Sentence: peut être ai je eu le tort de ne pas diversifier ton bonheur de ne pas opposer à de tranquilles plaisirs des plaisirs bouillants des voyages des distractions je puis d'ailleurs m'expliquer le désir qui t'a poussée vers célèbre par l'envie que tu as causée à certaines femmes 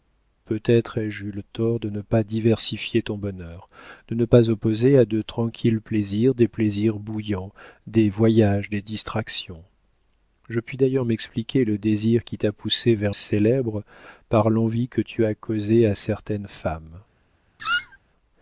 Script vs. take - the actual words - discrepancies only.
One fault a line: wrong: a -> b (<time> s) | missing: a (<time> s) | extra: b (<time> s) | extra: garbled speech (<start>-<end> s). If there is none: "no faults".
no faults